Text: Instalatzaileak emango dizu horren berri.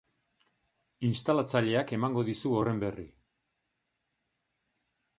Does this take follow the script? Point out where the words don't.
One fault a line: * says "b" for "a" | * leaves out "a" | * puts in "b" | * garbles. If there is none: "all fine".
all fine